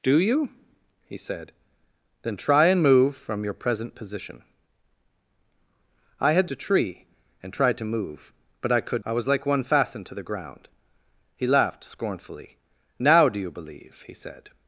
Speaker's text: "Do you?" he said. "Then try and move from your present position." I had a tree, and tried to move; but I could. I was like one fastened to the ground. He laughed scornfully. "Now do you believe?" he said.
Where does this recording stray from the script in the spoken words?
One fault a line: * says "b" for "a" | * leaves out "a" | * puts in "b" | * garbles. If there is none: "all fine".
all fine